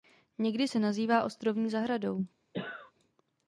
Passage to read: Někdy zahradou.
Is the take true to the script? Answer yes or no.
no